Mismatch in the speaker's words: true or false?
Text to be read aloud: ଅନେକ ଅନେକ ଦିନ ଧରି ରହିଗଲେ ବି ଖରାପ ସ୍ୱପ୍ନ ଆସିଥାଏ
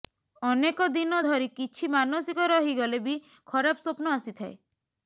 true